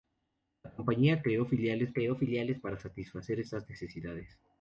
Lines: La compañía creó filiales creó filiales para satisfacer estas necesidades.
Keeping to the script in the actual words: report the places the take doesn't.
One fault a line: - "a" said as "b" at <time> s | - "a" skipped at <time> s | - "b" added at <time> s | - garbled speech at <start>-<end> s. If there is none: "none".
none